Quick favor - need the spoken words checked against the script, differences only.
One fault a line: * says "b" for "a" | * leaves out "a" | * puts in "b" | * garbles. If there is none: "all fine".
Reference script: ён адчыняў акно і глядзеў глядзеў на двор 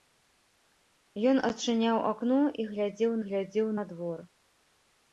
all fine